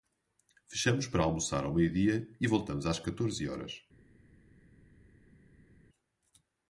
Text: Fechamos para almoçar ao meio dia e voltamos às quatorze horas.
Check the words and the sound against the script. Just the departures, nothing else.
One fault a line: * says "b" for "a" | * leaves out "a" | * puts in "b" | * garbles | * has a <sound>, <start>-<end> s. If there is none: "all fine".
all fine